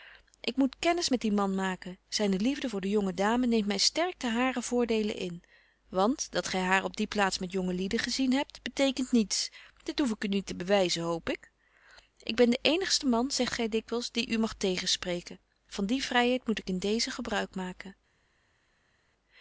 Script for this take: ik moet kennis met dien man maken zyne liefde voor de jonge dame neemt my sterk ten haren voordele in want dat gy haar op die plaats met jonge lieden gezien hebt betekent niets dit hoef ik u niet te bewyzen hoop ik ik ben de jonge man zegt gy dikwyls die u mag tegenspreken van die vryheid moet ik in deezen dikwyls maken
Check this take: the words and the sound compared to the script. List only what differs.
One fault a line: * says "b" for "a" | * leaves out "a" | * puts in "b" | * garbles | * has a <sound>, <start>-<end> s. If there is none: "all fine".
* says "eenigste" for "jonge"
* says "gebruik" for "dikwyls"